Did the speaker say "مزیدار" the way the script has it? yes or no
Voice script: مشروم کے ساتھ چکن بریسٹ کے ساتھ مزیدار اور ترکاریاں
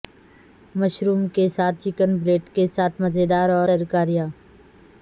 yes